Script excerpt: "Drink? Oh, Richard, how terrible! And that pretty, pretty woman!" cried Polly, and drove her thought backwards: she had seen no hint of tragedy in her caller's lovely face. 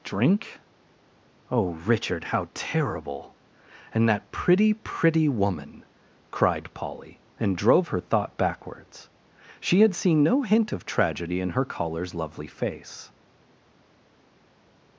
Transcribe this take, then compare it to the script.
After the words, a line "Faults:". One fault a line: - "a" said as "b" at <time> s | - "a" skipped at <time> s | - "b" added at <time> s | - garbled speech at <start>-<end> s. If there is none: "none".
"Drink? Oh, Richard, how terrible! And that pretty, pretty woman!" cried Polly, and drove her thought backwards: she had seen no hint of tragedy in her caller's lovely face.
Faults:
none